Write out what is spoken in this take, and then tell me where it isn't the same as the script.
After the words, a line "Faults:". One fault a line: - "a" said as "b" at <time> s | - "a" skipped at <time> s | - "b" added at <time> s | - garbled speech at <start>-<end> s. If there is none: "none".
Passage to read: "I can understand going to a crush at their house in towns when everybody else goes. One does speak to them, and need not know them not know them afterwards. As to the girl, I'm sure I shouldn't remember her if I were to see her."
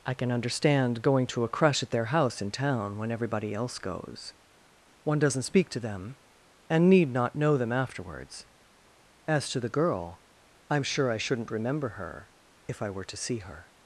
"I can understand going to a crush at their house in town when everybody else goes. One doesn't speak to them, and need not know them afterwards. As to the girl, I'm sure I shouldn't remember her if I were to see her."
Faults:
- "towns" said as "town" at 2.5 s
- "does" said as "doesn't" at 5.2 s
- "not know them" skipped at 7.7 s